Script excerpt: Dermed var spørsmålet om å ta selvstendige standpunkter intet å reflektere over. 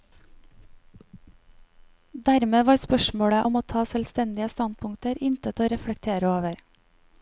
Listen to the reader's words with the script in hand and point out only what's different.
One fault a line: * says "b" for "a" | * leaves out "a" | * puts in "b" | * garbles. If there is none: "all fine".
all fine